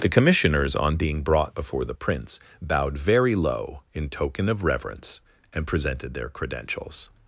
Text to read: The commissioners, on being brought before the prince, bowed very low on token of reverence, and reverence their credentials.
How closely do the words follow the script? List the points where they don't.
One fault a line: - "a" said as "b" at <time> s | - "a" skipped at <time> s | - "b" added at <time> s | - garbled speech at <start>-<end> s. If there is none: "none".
- "on" said as "in" at 3.9 s
- "reverence" said as "presented" at 5.7 s